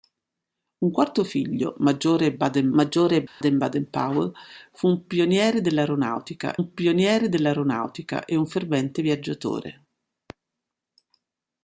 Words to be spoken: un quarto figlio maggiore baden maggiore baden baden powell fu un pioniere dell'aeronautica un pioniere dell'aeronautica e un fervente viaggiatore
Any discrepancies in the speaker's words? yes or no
no